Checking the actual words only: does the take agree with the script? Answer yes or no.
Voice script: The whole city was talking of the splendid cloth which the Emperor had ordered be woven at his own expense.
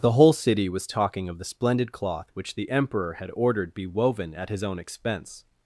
yes